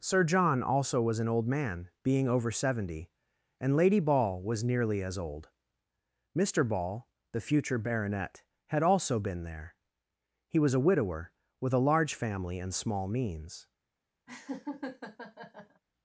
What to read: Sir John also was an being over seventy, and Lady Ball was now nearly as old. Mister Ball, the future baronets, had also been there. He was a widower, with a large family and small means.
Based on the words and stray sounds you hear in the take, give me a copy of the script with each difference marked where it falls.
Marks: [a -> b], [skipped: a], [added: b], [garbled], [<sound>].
Sir John also was an [added: old man] being over seventy, and Lady Ball was [skipped: now] nearly as old. Mister Ball, the future [baronets, -> baronet] had also been there. He was a widower, with a large family and small means. [laugh]